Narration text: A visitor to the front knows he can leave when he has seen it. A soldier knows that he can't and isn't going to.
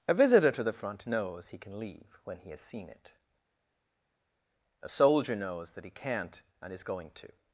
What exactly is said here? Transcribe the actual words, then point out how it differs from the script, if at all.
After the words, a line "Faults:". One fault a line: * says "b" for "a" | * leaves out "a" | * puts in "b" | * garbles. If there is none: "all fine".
A visitor to the front knows he can leave when he has seen it. A soldier knows that he can't and is going to.
Faults:
* says "is" for "isn't"